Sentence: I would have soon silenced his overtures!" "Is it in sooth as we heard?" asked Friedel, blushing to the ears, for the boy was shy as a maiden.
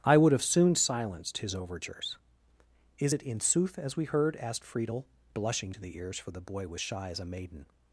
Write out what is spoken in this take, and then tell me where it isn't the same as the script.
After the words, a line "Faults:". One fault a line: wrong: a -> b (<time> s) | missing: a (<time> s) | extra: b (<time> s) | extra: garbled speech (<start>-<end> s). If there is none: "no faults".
I would have soon silenced his overtures!" "Is it in sooth as we heard?" asked Friedel, blushing to the ears, for the boy was shy as a maiden.
Faults:
no faults